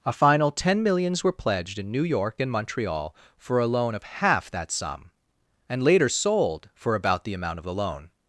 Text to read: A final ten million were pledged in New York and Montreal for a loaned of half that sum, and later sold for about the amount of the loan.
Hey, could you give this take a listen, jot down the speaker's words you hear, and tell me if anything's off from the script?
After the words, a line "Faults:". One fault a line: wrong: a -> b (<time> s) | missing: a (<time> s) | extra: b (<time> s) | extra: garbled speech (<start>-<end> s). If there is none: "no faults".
A final ten millions were pledged in New York and Montreal for a loan of half that sum, and later sold for about the amount of the loan.
Faults:
wrong: million -> millions (0.8 s)
wrong: loaned -> loan (3.7 s)